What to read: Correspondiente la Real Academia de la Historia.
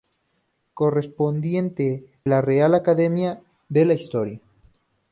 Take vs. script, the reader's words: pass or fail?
pass